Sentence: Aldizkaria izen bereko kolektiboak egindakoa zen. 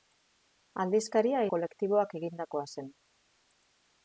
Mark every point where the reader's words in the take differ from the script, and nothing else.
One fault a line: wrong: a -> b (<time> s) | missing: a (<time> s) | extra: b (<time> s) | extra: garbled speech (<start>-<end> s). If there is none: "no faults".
missing: izen bereko (1.4 s)